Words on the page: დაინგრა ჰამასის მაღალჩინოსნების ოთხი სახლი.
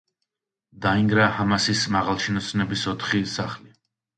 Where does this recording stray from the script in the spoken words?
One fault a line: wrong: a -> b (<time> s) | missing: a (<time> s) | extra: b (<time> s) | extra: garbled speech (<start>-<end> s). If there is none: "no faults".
no faults